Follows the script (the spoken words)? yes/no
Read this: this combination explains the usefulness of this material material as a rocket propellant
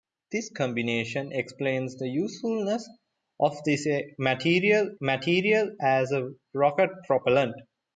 yes